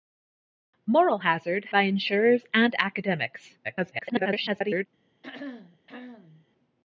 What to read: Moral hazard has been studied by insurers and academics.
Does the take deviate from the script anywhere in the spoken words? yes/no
yes